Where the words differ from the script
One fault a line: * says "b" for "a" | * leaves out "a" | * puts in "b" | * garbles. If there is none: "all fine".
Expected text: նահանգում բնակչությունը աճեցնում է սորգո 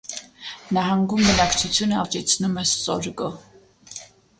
all fine